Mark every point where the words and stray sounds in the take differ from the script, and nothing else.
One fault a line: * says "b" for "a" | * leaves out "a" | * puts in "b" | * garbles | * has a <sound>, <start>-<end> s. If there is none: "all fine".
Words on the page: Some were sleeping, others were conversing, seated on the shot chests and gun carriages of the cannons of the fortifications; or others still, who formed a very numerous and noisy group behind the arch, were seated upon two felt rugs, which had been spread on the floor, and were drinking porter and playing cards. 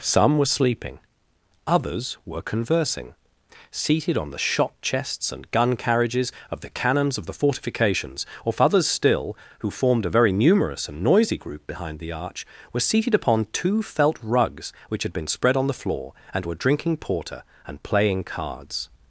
all fine